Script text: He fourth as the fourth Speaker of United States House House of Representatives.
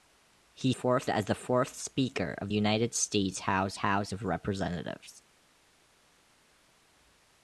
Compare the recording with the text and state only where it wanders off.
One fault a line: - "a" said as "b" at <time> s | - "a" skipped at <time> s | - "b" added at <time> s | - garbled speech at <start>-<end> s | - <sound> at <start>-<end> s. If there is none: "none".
none